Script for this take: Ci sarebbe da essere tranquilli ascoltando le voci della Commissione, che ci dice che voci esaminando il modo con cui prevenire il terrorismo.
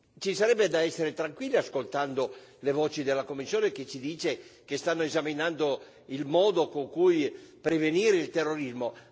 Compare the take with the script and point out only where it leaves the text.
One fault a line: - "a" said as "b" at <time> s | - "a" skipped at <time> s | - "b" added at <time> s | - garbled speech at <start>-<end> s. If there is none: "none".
- "voci" said as "stanno" at 4.8 s